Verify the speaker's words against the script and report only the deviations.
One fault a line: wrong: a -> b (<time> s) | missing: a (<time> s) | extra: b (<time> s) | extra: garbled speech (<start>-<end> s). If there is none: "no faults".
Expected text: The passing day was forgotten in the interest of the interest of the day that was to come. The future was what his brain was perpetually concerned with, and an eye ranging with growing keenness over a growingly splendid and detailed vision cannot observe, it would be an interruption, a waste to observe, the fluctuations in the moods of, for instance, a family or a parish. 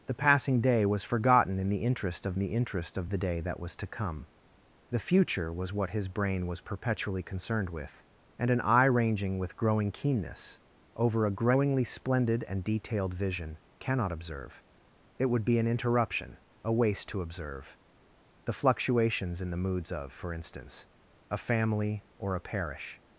no faults